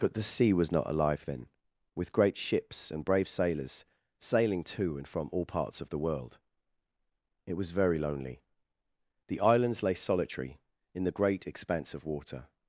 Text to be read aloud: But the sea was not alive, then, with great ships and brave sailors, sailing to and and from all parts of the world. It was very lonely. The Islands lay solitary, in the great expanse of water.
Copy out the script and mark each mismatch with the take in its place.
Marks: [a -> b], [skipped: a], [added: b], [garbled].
But the sea was not alive, then, with great ships and brave sailors, sailing to and [skipped: and] from all parts of the world. It was very lonely. The Islands lay solitary, in the great expanse of water.